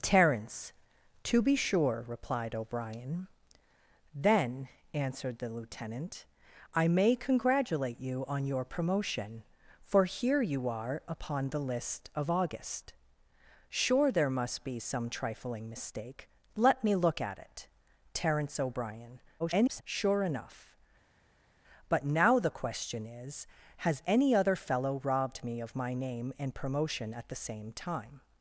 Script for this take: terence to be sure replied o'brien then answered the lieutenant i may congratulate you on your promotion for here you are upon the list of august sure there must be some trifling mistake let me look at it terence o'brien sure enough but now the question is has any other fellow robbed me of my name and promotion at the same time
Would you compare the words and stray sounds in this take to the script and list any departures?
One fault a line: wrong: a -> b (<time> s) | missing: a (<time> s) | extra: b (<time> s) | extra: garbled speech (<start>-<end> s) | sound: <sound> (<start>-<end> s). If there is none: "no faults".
extra: garbled speech (19.4-19.8 s)